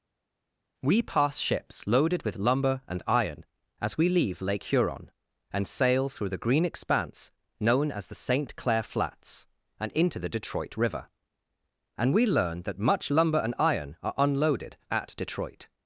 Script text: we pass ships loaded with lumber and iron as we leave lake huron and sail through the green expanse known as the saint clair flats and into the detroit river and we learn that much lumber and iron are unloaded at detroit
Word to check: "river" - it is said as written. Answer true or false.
true